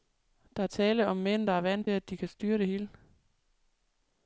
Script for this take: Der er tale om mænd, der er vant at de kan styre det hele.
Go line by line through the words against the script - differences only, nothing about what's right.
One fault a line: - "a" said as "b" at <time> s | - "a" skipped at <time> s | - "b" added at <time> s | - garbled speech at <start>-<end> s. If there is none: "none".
none